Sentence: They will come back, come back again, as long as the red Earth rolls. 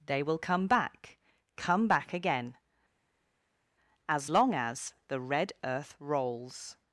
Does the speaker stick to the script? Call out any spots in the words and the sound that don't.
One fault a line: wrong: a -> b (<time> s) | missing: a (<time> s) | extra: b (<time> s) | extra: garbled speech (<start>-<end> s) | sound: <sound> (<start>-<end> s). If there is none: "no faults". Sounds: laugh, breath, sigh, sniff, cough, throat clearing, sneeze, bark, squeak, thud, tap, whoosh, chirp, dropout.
no faults